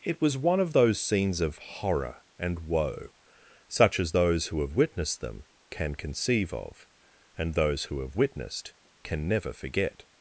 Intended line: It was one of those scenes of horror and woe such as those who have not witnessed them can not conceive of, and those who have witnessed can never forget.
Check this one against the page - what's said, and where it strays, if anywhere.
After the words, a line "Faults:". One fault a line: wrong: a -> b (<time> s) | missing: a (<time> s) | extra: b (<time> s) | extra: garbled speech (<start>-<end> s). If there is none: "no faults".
It was one of those scenes of horror and woe such as those who have witnessed them can conceive of, and those who have witnessed can never forget.
Faults:
missing: not (4.7 s)
missing: not (5.9 s)